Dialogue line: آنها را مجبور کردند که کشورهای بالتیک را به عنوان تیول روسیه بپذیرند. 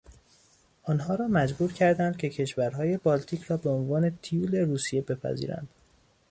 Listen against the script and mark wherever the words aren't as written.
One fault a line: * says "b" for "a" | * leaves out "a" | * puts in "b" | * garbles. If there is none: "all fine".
all fine